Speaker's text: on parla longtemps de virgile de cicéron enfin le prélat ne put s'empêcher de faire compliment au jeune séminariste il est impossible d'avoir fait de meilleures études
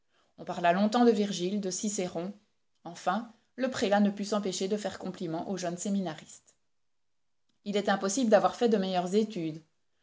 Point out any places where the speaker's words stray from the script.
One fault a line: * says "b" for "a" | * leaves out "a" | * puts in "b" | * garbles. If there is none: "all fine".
all fine